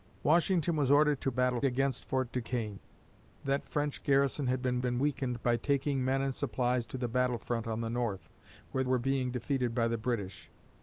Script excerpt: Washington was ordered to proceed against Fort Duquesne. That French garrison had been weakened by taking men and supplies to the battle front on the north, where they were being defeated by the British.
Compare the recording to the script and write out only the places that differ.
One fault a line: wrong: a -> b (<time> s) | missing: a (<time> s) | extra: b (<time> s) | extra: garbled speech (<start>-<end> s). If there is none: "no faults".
wrong: proceed -> battle (1.3 s)
extra: been (4.8 s)
missing: they (8.8 s)